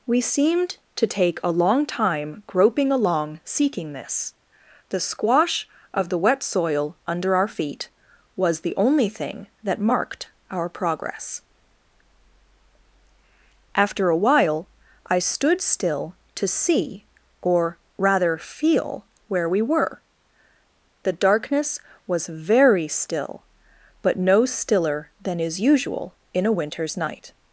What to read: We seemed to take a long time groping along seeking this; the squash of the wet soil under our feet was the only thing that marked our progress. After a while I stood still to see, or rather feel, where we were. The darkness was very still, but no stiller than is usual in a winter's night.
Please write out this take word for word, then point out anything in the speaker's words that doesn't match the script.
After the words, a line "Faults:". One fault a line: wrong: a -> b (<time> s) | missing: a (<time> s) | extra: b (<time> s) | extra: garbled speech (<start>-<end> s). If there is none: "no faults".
We seemed to take a long time groping along seeking this; the squash of the wet soil under our feet was the only thing that marked our progress. After a while I stood still to see, or rather feel, where we were. The darkness was very still, but no stiller than is usual in a winter's night.
Faults:
no faults